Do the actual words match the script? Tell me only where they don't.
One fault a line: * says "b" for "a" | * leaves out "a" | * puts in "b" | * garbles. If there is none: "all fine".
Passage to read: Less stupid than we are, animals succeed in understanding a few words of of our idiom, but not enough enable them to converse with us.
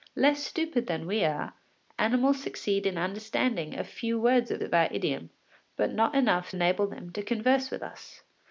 all fine